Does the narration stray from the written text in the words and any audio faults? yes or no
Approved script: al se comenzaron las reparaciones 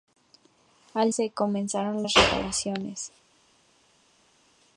no